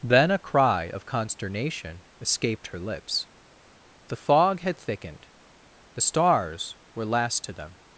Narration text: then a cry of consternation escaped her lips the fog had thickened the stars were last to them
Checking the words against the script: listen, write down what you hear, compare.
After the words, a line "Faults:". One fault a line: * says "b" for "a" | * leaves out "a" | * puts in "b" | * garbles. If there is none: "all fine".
then a cry of consternation escaped her lips the fog had thickened the stars were last to them
Faults:
all fine